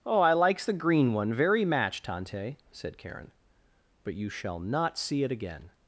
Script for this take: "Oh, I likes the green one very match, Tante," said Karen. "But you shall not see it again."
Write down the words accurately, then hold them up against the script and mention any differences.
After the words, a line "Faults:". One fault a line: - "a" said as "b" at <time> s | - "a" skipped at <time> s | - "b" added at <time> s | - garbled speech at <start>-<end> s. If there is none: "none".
"Oh, I likes the green one very match, Tante," said Karen. "But you shall not see it again."
Faults:
none